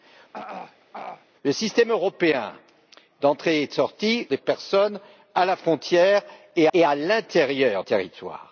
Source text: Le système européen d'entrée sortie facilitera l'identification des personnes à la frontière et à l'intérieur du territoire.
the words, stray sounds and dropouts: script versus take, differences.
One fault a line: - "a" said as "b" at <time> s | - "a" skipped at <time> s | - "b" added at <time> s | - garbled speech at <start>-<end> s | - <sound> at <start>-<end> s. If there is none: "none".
- throat clearing at 0.3-1.3 s
- "facilitera l'identification" skipped at 4.3 s
- "et" added at 6.7 s
- "du" skipped at 7.8 s